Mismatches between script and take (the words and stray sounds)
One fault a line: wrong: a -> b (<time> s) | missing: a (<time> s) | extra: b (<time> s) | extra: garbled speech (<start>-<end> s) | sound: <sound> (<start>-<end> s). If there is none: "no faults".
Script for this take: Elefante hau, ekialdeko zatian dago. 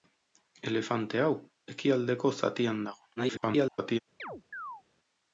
extra: garbled speech (3.2-4.0 s)
sound: chirp (4.2-4.8 s)